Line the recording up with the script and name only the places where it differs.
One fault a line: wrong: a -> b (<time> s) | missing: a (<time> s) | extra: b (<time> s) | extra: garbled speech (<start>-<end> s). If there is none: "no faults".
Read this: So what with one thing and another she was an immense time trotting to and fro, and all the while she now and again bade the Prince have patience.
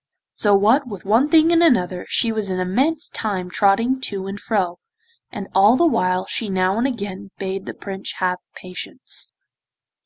no faults